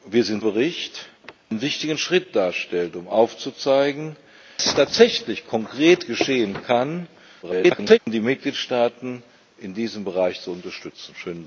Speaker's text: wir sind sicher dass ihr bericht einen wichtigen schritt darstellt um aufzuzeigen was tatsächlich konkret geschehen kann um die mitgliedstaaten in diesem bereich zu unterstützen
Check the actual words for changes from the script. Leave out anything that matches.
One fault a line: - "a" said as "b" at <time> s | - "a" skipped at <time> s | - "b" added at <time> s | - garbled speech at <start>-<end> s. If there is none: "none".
- "sicher dass ihr" skipped at 0.4 s
- garbled speech at 7.4-8.0 s